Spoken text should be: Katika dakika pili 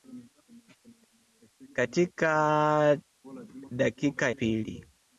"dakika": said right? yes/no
yes